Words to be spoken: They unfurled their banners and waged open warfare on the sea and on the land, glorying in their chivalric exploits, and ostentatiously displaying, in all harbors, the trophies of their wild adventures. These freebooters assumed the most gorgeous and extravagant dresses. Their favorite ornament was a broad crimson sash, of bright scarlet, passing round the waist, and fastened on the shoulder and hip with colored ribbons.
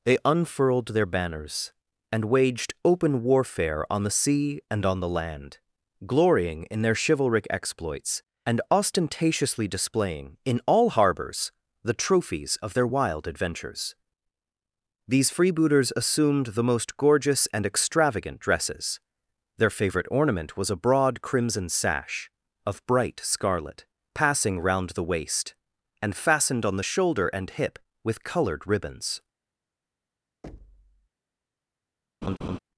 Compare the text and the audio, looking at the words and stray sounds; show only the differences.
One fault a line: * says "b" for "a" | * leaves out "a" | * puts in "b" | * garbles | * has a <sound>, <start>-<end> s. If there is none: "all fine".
* has a thud, 30.4-31.1 s
* has a laugh, 32.2-32.6 s